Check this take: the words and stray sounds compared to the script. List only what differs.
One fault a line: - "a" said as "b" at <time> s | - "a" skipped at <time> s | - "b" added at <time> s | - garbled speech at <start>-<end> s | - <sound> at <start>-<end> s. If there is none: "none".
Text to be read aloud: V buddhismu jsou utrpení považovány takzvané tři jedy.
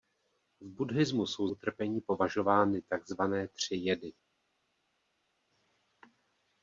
none